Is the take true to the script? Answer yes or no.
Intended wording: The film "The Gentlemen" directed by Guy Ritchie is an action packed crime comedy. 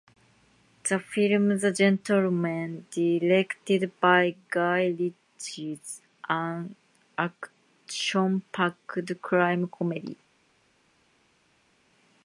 yes